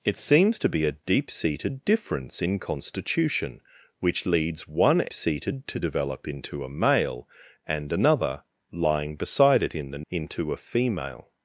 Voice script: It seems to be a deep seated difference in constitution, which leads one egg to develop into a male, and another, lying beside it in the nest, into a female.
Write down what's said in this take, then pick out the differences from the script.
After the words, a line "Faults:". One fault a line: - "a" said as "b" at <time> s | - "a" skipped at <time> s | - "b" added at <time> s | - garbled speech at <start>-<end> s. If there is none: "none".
It seems to be a deep seated difference in constitution, which leads one seated to develop into a male, and another, lying beside it in the into a female.
Faults:
- "egg" said as "seated" at 5.1 s
- "nest" skipped at 10.0 s